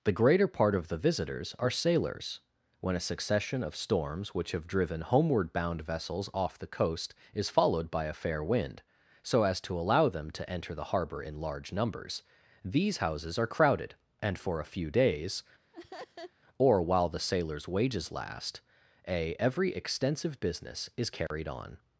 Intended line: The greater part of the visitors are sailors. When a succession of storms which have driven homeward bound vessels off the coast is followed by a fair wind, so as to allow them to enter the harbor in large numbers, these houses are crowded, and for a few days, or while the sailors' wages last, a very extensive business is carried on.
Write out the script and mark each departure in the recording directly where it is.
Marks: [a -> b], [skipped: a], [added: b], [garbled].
The greater part of the visitors are sailors. When a succession of storms which have driven homeward bound vessels off the coast is followed by a fair wind, so as to allow them to enter the harbor in large numbers, these houses are crowded, and for a few days, or while the sailors' wages last, a [very -> every] extensive business is carried on.